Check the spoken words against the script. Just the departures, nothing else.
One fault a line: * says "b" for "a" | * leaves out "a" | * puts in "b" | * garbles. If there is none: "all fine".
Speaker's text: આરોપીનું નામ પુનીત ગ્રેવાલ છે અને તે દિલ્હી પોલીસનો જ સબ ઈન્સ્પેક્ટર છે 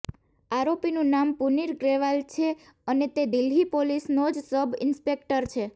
all fine